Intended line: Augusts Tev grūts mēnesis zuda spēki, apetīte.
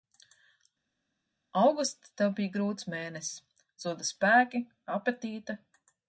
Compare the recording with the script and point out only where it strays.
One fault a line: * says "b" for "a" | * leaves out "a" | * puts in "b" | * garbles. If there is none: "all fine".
* puts in "bija"